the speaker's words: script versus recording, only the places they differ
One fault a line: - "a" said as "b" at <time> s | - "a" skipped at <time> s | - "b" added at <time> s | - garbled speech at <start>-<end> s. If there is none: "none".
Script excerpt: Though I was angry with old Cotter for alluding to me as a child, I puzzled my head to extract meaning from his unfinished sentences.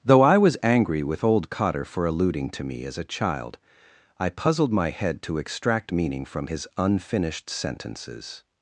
none